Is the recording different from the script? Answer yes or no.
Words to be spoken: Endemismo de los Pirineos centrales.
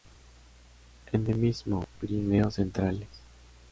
yes